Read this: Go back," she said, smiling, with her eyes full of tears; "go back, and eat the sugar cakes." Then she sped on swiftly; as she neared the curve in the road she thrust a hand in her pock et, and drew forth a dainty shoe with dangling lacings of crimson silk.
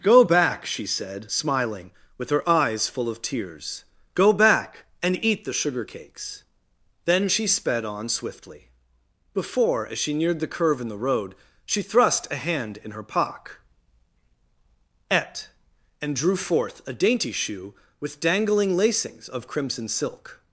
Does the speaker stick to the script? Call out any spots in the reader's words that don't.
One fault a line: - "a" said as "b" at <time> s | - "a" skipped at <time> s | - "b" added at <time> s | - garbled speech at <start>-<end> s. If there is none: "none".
- "before" added at 9.3 s